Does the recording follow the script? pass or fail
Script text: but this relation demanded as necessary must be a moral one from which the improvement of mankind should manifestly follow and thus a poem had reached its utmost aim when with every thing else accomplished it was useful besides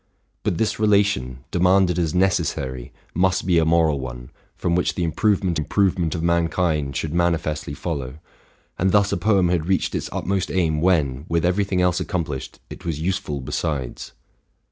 fail